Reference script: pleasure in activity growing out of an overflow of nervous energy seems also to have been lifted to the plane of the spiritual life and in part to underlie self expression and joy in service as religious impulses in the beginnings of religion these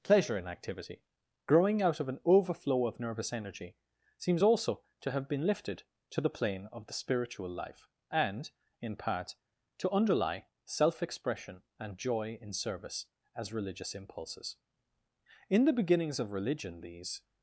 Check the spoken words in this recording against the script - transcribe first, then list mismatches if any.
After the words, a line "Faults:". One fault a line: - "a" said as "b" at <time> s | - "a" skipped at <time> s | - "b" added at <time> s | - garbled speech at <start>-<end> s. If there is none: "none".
pleasure in activity growing out of an overflow of nervous energy seems also to have been lifted to the plane of the spiritual life and in part to underlie self expression and joy in service as religious impulses in the beginnings of religion these
Faults:
none